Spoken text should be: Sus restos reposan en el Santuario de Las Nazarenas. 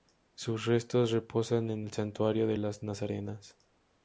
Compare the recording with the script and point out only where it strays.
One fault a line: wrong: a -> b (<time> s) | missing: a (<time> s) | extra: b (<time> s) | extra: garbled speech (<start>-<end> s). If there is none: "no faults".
no faults